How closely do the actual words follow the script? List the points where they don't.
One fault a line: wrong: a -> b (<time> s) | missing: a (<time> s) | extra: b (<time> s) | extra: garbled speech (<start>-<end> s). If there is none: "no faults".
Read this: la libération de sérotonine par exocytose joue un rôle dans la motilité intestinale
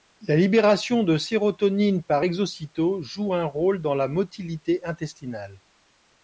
no faults